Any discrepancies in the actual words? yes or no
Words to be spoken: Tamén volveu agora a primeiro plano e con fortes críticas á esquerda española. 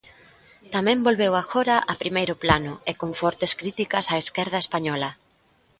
no